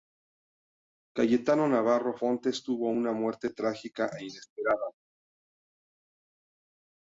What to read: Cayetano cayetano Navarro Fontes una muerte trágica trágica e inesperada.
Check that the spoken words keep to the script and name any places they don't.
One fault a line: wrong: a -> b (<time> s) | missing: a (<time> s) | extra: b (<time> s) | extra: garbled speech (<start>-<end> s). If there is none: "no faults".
missing: cayetano (1.7 s)
extra: tuvo (2.6 s)
missing: trágica (4.1 s)